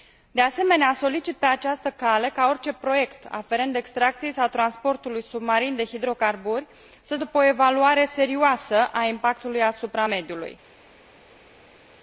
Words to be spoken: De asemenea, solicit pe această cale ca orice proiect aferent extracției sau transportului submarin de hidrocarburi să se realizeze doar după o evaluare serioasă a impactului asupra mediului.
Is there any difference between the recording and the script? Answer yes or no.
yes